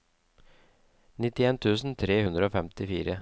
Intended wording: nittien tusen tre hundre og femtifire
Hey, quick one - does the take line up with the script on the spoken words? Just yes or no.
yes